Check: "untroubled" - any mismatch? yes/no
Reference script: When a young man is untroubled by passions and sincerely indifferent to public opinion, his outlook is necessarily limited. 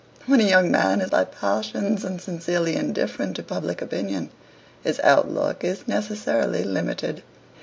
yes